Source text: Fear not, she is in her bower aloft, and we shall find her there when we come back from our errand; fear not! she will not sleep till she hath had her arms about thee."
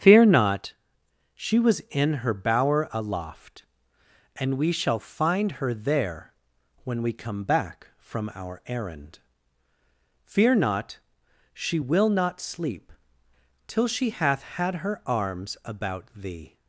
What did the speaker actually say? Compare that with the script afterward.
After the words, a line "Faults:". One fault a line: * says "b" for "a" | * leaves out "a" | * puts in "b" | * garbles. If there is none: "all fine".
Fear not, she was in her bower aloft, and we shall find her there when we come back from our errand; fear not! she will not sleep till she hath had her arms about thee."
Faults:
* says "was" for "is"